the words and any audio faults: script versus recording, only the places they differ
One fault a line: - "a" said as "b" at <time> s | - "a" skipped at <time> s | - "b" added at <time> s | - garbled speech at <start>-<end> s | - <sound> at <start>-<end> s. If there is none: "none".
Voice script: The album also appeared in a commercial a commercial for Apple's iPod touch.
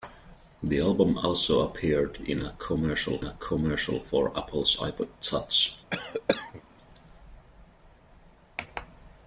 - cough at 5.9-6.6 s